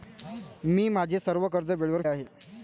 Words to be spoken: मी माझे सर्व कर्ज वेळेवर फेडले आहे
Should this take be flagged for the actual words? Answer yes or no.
yes